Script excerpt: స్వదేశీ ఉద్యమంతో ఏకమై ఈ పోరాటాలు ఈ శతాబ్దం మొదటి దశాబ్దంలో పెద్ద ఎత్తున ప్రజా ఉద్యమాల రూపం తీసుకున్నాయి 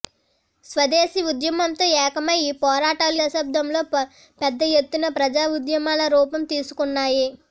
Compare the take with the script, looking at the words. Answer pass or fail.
fail